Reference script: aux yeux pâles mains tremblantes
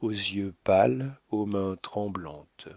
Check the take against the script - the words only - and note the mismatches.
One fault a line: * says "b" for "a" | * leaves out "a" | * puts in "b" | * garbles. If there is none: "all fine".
* puts in "aux"